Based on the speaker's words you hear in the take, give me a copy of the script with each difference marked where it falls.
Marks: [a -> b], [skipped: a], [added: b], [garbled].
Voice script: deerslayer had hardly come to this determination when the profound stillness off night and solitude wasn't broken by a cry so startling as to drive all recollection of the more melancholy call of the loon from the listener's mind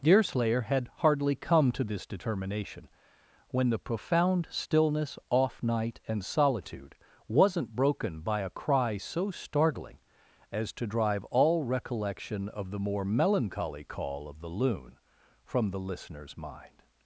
deerslayer had hardly come to this determination when the profound stillness off night and solitude wasn't broken by a cry so startling as to drive all recollection of the more melancholy call of the loon from the listener's mind